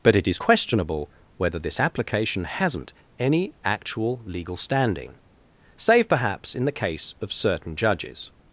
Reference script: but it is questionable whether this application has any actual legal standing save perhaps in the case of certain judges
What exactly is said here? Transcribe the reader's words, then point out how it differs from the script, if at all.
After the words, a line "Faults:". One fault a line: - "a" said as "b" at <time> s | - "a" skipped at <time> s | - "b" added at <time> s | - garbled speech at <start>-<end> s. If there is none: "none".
but it is questionable whether this application hasn't any actual legal standing save perhaps in the case of certain judges
Faults:
- "has" said as "hasn't" at 2.4 s